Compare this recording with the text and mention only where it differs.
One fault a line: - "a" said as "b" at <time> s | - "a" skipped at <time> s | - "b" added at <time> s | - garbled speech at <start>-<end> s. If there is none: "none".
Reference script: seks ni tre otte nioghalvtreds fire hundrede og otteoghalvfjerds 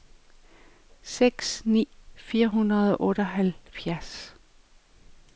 - "tre otte nioghalvtreds" skipped at 1.9 s